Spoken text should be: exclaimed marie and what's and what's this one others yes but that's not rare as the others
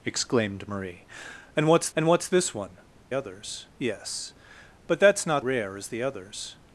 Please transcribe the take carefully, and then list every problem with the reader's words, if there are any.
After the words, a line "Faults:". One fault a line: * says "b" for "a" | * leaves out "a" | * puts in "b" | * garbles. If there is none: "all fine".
exclaimed marie and what's and what's this one others yes but that's not rare as the others
Faults:
all fine